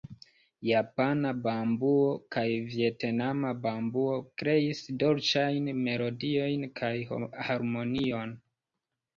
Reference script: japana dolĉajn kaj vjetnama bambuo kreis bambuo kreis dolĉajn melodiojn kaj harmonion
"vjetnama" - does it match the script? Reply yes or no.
yes